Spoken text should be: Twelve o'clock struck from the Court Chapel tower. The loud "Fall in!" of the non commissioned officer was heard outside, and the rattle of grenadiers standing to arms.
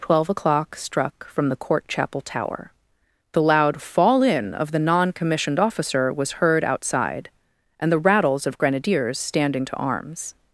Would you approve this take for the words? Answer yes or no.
no